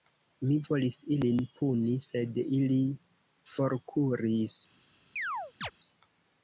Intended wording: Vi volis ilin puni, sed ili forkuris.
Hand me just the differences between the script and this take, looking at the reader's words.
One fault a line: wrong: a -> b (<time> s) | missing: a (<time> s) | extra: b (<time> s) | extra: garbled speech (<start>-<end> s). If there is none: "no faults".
wrong: Vi -> Mi (0.4 s)